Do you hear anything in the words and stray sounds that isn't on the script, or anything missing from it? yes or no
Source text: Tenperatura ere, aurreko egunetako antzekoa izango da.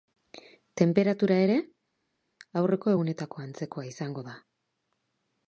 no